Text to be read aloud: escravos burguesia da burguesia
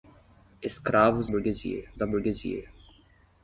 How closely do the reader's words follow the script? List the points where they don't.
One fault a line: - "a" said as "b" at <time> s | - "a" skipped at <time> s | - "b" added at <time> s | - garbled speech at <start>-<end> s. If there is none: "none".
none